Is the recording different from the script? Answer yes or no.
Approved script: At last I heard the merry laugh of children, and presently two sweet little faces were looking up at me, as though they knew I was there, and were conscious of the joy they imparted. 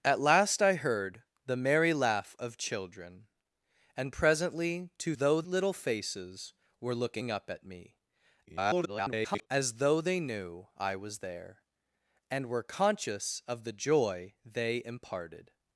yes